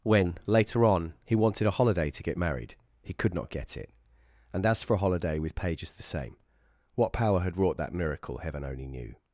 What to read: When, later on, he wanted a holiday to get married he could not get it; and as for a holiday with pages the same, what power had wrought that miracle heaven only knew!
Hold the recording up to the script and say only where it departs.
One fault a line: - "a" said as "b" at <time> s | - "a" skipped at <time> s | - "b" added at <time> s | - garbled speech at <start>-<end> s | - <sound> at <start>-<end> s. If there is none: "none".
none